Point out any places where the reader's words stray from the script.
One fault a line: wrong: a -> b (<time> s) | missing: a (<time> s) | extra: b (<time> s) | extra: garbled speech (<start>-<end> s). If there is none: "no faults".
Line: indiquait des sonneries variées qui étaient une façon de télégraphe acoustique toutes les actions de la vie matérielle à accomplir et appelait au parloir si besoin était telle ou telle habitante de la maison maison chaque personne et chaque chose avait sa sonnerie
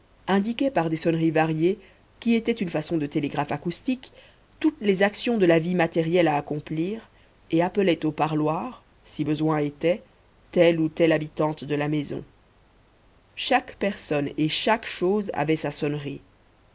extra: par (0.7 s)
missing: maison (12.2 s)